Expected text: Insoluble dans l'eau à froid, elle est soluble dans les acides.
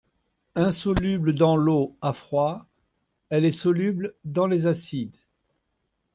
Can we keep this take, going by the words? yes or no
yes